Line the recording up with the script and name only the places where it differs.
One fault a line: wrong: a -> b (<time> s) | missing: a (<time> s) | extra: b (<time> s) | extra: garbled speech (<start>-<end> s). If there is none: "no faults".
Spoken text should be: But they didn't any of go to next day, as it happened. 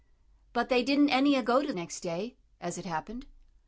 no faults